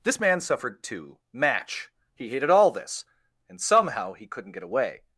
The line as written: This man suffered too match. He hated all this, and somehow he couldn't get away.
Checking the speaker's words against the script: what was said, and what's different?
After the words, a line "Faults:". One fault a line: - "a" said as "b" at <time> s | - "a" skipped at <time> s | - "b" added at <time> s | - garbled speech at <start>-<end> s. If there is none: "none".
This man suffered too match. He hated all this, and somehow he couldn't get away.
Faults:
none